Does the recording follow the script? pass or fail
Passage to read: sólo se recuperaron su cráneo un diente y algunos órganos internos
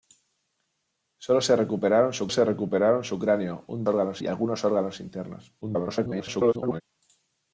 fail